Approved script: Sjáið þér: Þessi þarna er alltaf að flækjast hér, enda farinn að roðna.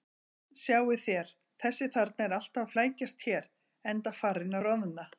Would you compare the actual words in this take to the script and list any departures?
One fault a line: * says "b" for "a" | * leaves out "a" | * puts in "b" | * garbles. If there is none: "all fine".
all fine